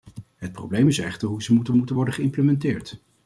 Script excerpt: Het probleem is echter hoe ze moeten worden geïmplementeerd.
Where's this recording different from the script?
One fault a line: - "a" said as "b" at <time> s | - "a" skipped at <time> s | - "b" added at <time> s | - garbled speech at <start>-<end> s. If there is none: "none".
- "moeten" added at 1.8 s